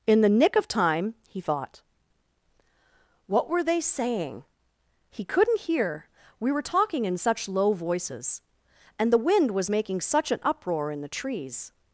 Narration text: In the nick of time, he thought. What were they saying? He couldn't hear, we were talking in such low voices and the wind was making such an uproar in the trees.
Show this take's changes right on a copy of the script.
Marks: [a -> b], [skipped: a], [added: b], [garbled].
In the nick of time, he thought. What were they saying? He couldn't hear, we were talking in such low voices and the wind was making such an uproar in the trees.